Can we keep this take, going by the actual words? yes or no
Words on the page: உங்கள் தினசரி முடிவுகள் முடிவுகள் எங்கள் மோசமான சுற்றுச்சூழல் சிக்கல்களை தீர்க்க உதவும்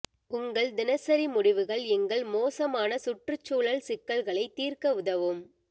no